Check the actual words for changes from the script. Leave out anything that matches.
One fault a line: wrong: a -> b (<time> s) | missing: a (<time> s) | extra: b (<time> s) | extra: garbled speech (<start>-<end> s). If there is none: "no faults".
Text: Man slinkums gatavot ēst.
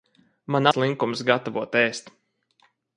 no faults